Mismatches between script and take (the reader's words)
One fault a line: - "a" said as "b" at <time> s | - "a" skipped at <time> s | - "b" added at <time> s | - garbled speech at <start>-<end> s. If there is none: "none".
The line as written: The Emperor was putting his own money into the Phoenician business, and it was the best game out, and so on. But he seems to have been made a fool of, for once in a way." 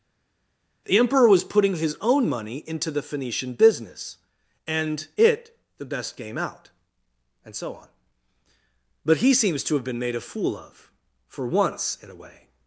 - "was" skipped at 5.6 s